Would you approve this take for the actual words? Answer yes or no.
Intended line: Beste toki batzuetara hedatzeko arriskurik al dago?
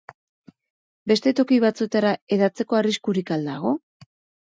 yes